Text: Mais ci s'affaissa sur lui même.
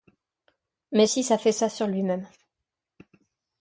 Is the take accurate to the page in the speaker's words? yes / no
yes